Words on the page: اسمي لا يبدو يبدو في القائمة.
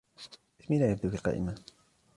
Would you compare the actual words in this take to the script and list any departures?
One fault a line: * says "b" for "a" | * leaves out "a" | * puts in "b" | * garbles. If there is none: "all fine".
* leaves out "يبدو"